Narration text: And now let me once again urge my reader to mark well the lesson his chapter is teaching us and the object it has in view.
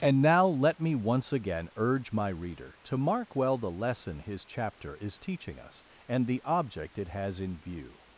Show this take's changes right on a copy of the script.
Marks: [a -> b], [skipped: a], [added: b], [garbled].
And now let me once again urge my reader to mark well the lesson his chapter is teaching us and the object it has in view.